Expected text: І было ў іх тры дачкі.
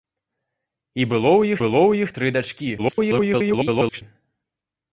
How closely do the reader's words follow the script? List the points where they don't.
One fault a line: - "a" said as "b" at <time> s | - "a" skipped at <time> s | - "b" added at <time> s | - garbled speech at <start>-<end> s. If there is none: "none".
- "было ў" added at 1.6 s
- garbled speech at 2.8-4.0 s